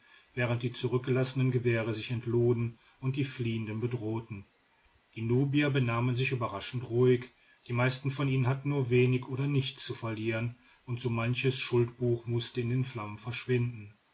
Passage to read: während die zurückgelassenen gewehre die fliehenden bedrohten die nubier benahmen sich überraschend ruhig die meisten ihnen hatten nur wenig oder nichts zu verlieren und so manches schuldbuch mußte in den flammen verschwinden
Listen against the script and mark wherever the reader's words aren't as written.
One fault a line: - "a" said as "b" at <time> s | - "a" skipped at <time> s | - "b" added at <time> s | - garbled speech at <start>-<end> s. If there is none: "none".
- "sich entluden und" added at 1.9 s
- "von" added at 8.1 s